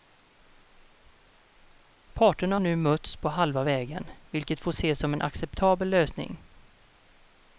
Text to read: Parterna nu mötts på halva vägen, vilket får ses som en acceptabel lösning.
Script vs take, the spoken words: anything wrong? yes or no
no